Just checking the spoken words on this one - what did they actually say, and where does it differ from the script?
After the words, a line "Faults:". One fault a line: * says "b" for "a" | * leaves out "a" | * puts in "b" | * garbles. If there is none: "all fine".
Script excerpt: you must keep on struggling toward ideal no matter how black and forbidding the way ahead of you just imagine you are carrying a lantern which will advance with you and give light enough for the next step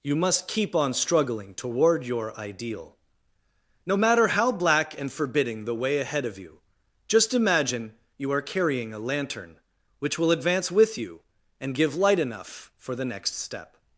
you must keep on struggling toward your ideal no matter how black and forbidding the way ahead of you just imagine you are carrying a lantern which will advance with you and give light enough for the next step
Faults:
* puts in "your"